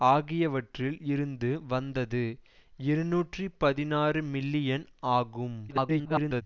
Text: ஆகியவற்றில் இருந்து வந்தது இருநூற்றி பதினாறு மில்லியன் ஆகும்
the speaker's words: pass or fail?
fail